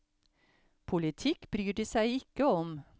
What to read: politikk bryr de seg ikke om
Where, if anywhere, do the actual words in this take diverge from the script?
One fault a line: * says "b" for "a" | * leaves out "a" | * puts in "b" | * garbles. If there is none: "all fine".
all fine